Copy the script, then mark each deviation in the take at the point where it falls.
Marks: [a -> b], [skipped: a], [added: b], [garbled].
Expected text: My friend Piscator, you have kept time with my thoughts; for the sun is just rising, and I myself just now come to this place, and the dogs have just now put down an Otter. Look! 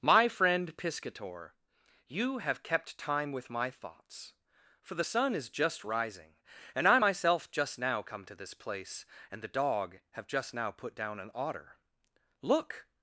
My friend Piscator, you have kept time with my thoughts; for the sun is just rising, and I myself just now come to this place, and the [dogs -> dog] have just now put down an Otter. Look!